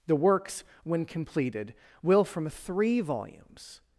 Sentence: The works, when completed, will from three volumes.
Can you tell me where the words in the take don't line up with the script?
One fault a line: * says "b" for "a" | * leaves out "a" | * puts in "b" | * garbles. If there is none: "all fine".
all fine